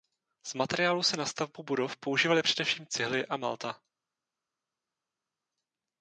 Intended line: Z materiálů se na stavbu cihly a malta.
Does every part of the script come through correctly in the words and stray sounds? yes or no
no